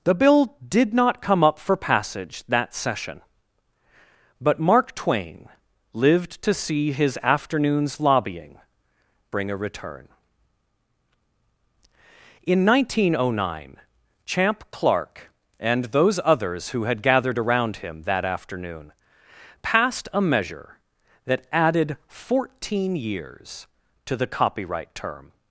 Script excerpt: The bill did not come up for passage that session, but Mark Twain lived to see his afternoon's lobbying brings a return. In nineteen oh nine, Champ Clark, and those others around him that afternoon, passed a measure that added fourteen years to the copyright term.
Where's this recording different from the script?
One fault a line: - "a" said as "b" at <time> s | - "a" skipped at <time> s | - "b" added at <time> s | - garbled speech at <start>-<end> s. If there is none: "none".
- "brings" said as "bring" at 9.3 s
- "who had gathered" added at 16.7 s